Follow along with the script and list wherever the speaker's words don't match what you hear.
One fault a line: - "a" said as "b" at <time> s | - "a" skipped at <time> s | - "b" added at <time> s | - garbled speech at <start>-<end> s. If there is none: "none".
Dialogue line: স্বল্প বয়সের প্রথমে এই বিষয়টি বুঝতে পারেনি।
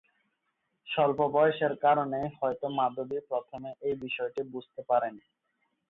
- "কারণেই হয়তো মাধবী" added at 1.8 s